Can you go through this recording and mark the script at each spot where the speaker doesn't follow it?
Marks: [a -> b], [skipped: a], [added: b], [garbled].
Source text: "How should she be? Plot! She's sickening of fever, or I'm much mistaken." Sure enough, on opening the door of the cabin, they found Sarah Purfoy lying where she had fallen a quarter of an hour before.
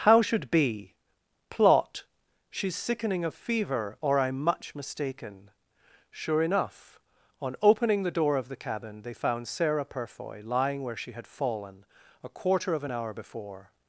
"How should [skipped: she] be? Plot! She's sickening of fever, or I'm much mistaken." Sure enough, on opening the door of the cabin, they found Sarah Purfoy lying where she had fallen a quarter of an hour before.